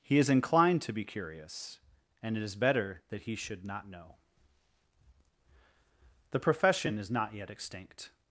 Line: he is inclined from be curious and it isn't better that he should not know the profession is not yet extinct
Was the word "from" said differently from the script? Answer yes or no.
yes